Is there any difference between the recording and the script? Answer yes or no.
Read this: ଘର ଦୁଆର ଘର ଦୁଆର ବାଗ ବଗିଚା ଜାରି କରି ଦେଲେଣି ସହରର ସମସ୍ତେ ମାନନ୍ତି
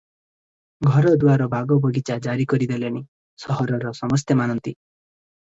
yes